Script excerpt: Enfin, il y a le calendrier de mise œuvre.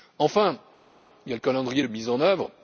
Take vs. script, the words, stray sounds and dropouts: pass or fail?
fail